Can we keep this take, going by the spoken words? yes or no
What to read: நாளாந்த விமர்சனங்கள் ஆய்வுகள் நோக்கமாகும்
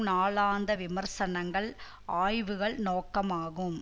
yes